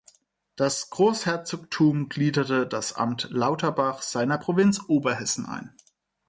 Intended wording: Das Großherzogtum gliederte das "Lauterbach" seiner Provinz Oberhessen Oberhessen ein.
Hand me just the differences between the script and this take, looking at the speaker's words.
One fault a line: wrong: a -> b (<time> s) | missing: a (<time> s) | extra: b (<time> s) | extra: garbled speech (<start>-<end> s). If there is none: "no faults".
extra: Amt (2.9 s)
missing: Oberhessen (5.5 s)